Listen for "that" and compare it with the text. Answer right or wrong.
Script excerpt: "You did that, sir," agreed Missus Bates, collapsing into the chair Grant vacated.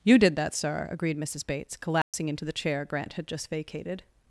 right